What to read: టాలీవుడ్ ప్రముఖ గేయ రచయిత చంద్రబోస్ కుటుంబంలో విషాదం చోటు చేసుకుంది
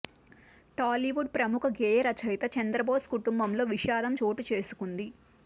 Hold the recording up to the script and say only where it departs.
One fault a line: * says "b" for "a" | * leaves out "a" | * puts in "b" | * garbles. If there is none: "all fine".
all fine